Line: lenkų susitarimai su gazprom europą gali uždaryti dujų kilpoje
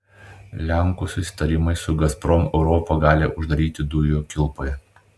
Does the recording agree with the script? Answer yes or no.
yes